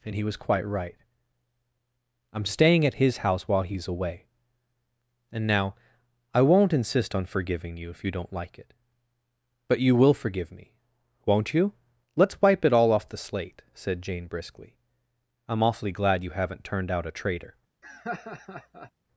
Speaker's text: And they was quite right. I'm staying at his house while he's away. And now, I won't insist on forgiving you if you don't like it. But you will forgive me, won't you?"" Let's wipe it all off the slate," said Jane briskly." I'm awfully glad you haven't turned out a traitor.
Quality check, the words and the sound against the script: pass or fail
fail